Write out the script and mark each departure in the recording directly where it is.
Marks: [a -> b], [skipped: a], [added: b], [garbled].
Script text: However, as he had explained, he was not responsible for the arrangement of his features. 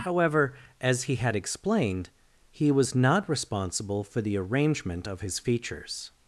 However, as he had explained, he was not responsible for the arrangement of his features.